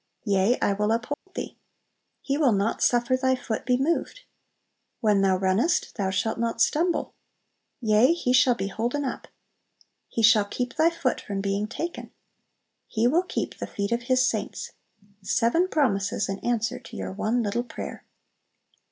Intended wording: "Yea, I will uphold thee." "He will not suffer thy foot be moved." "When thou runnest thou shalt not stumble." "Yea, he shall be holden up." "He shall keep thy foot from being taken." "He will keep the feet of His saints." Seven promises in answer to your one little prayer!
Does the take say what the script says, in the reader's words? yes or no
yes